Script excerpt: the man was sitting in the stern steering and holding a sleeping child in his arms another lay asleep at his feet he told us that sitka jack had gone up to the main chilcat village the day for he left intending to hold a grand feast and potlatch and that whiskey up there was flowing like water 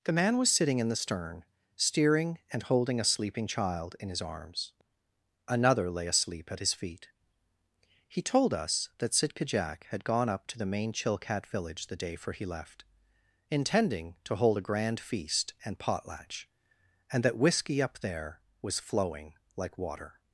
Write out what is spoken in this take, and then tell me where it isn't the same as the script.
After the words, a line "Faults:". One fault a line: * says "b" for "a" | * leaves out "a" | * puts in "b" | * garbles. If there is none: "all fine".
the man was sitting in the stern steering and holding a sleeping child in his arms another lay asleep at his feet he told us that sitka jack had gone up to the main chilcat village the day for he left intending to hold a grand feast and potlatch and that whiskey up there was flowing like water
Faults:
all fine